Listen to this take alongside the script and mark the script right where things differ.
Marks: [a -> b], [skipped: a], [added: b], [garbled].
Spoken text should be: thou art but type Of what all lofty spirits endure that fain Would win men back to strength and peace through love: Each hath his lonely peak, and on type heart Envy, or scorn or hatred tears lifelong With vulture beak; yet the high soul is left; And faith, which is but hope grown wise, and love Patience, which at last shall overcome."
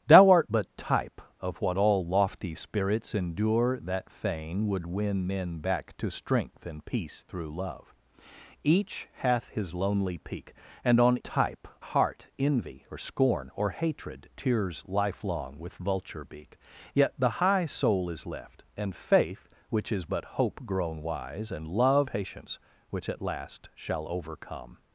thou art but type Of what all lofty spirits endure that fain Would win men back to strength and peace through love: Each hath his lonely peak, and on type heart Envy, or scorn or hatred tears lifelong With vulture beak; yet the high soul is left; And faith, which is but hope grown wise, and love Patience, which at last shall overcome."